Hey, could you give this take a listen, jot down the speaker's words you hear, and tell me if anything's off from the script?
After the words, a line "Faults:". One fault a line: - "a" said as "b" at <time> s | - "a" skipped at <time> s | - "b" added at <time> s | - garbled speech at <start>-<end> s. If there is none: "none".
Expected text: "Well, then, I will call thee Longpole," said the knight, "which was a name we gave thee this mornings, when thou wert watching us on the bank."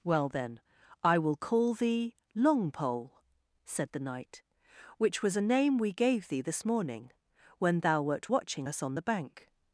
"Well, then, I will call thee Longpole," said the knight, "which was a name we gave thee this morning, when thou wert watching us on the bank."
Faults:
- "mornings" said as "morning" at 6.7 s